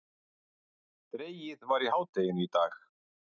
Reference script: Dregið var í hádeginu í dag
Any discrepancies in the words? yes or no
no